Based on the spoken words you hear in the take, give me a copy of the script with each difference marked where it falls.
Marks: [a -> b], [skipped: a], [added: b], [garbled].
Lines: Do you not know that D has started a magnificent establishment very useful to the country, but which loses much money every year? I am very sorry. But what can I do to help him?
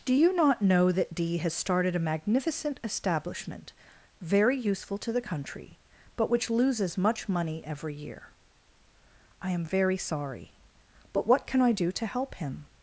Do you not know that D has started a magnificent establishment very useful to the country, but which loses much money every year? I am very sorry. But what can I do to help him?